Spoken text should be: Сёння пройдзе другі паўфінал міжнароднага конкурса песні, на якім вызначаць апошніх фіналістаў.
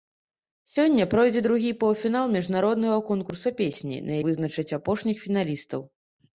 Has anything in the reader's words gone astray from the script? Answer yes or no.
yes